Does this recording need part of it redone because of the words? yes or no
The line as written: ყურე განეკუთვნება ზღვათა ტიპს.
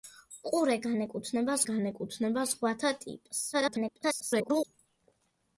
yes